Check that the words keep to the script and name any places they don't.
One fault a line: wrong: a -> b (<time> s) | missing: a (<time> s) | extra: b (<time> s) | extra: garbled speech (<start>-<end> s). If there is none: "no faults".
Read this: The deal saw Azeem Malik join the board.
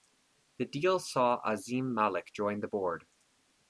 no faults